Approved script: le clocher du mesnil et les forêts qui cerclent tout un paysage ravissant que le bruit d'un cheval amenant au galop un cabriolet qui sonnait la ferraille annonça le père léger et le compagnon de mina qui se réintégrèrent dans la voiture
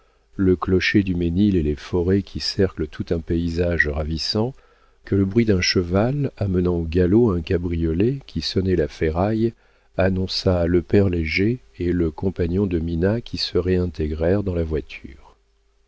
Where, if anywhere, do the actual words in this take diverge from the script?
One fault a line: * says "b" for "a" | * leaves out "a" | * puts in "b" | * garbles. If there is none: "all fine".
all fine